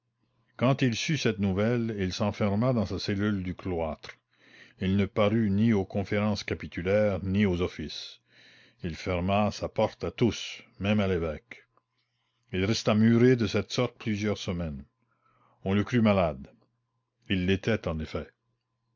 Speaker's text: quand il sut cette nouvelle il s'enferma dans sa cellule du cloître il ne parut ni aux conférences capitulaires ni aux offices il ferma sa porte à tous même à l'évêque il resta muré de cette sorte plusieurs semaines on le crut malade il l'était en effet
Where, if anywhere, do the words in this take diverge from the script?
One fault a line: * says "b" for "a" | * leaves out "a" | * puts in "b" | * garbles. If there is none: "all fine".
all fine